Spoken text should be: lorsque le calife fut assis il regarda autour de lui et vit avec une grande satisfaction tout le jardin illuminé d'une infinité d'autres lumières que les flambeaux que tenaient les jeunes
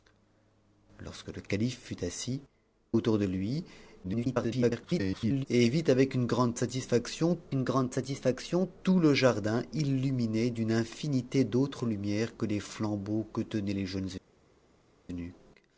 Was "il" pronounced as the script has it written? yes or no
no